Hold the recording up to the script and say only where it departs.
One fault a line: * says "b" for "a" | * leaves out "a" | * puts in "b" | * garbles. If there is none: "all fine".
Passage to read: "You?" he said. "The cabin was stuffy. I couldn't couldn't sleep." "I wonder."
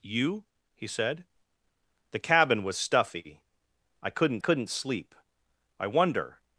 all fine